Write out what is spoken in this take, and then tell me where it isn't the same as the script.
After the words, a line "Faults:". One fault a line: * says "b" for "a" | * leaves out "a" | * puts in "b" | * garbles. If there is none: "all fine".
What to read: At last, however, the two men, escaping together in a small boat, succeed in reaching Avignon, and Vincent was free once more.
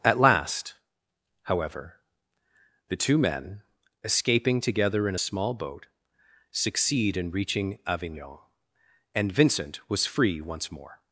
At last, however, the two men, escaping together in a small boat, succeed in reaching Avignon, and Vincent was free once more.
Faults:
all fine